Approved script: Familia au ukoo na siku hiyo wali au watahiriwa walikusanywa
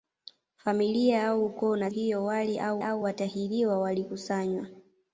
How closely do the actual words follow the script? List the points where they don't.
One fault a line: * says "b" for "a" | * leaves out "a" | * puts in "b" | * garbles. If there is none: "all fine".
* leaves out "siku"
* puts in "au"